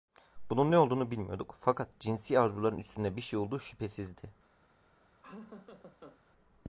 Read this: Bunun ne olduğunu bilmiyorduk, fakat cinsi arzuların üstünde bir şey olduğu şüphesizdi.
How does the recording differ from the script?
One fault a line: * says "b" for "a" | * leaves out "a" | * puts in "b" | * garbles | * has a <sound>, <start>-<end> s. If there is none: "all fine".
* has a laugh, 5.2-6.2 s